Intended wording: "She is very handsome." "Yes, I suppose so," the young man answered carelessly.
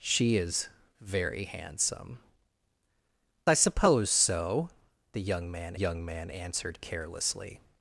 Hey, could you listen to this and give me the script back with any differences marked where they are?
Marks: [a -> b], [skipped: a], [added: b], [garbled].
"She is very handsome." [skipped: "Yes,] I suppose so," the young man [added: young man] answered carelessly.